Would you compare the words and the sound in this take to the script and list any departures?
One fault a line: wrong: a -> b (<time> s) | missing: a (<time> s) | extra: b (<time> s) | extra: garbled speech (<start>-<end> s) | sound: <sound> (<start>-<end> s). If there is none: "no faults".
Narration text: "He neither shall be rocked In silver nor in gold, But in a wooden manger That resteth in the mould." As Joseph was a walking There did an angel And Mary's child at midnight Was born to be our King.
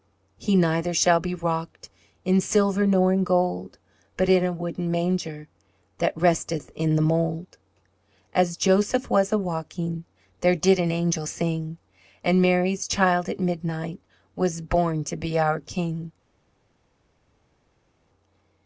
extra: sing (11.2 s)